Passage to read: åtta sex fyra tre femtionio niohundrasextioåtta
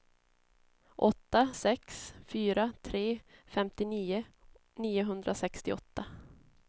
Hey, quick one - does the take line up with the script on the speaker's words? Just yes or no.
yes